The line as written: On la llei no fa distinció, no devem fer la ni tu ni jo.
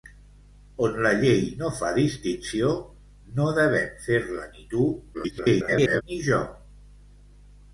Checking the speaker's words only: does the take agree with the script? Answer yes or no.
no